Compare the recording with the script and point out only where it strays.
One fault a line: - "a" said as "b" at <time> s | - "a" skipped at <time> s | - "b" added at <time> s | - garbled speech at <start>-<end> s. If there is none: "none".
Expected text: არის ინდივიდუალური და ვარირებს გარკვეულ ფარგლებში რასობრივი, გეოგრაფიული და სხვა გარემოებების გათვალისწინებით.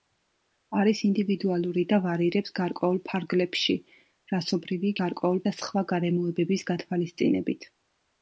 - "გეოგრაფიული" said as "გარკვეულ" at 5.0 s